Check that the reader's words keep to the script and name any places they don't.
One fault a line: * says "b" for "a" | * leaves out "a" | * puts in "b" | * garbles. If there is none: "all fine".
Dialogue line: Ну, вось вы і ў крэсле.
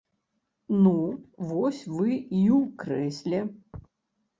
all fine